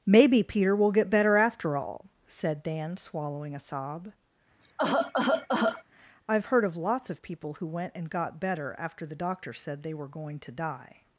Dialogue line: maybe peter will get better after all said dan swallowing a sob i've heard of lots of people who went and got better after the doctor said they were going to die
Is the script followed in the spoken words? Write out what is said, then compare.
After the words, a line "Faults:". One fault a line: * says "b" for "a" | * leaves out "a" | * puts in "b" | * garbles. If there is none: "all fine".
maybe peter will get better after all said dan swallowing a sob i've heard of lots of people who went and got better after the doctor said they were going to die
Faults:
all fine